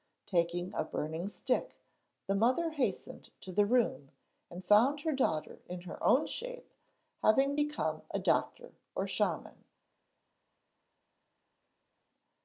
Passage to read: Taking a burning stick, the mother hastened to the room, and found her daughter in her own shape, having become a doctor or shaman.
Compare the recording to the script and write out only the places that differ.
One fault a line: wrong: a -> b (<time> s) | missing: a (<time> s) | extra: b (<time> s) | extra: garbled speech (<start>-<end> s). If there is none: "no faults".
no faults